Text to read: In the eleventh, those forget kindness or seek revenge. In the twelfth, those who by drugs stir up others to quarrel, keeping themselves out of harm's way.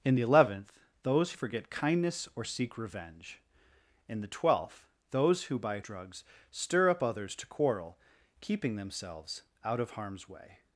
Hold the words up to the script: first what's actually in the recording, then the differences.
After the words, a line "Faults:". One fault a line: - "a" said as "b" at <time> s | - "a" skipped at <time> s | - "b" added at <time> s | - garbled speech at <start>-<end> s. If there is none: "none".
In the eleventh, those forget kindness or seek revenge. In the twelfth, those who by drugs stir up others to quarrel, keeping themselves out of harm's way.
Faults:
none